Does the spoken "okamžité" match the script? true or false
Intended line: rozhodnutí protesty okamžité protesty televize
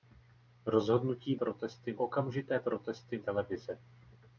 true